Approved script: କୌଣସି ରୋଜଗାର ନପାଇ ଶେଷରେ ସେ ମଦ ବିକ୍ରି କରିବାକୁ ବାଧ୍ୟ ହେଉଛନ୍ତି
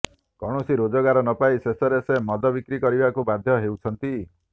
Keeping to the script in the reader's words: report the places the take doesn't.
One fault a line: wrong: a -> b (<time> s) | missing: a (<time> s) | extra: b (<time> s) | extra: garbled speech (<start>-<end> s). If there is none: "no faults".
no faults